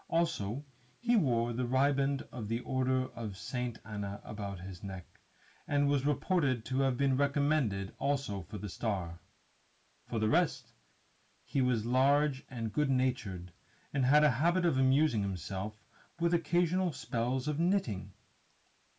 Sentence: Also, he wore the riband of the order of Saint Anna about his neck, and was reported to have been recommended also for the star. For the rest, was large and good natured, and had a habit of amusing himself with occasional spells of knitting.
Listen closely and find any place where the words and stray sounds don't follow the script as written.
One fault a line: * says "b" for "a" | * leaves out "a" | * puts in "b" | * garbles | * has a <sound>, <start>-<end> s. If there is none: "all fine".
* puts in "he"